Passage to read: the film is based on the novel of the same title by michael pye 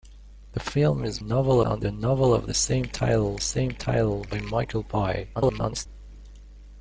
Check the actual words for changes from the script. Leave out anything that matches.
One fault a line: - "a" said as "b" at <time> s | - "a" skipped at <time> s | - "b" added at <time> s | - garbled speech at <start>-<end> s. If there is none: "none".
- "based" said as "novel" at 1.2 s
- "same title" added at 3.4 s
- garbled speech at 5.3-5.9 s